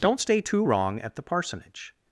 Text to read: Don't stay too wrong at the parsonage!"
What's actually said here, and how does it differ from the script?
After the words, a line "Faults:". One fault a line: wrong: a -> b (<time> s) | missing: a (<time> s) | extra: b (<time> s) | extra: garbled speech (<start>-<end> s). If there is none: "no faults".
Don't stay too wrong at the parsonage!"
Faults:
no faults